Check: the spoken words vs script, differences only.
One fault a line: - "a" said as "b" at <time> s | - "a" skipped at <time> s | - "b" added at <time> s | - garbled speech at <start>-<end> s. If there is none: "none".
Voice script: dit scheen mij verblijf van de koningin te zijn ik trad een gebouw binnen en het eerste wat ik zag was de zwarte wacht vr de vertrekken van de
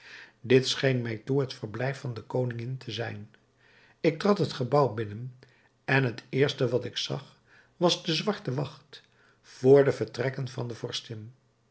- "toe het" added at 1.2 s
- "een" said as "het" at 4.4 s